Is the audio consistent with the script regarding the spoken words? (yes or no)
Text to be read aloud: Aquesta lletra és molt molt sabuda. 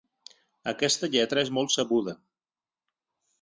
no